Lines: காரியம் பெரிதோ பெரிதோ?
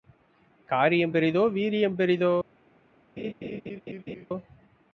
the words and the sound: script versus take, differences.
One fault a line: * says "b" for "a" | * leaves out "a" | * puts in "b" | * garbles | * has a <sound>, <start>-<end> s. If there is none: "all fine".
* puts in "வீரியம்"
* has a laugh, 3.2-4.3 s